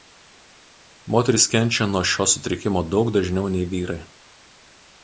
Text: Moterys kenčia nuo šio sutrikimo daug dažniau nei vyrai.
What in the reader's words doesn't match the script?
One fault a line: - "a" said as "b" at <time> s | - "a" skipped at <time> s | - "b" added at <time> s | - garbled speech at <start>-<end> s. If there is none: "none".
none